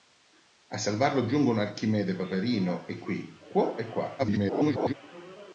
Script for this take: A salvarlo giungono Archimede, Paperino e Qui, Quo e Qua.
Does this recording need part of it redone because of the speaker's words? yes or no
yes